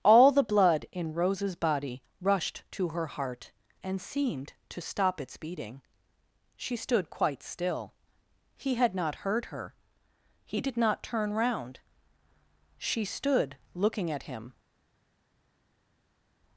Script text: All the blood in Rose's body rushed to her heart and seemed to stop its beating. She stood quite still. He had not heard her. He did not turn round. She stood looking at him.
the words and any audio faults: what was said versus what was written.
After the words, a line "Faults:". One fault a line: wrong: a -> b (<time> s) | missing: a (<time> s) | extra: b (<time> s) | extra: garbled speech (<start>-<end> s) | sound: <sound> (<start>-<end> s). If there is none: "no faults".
All the blood in Rose's body rushed to her heart and seemed to stop its beating. She stood quite still. He had not heard her. He did not turn round. She stood looking at him.
Faults:
no faults